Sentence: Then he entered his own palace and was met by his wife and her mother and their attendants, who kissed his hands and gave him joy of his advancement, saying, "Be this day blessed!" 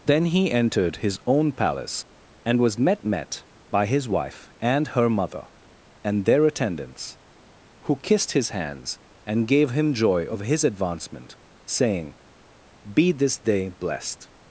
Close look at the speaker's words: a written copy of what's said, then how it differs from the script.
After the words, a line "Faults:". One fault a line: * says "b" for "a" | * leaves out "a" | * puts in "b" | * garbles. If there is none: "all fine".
Then he entered his own palace and was met met by his wife and her mother and their attendants, who kissed his hands and gave him joy of his advancement, saying, "Be this day blessed!"
Faults:
* puts in "met"